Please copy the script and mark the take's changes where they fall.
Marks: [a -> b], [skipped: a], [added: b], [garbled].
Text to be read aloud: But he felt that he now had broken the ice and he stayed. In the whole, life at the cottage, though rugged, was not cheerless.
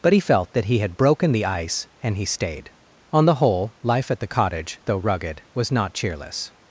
But he felt that he [skipped: now] had broken the ice and he stayed. [In -> On] the whole, life at the cottage, though rugged, was not cheerless.